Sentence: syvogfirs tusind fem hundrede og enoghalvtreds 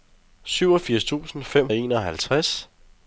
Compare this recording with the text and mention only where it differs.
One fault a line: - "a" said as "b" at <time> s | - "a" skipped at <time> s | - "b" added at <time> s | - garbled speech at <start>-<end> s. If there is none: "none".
- "hundrede" skipped at 1.7 s